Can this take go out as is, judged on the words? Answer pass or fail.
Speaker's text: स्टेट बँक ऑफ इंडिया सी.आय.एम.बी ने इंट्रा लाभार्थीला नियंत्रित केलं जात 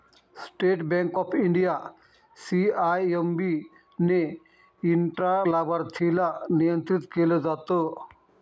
pass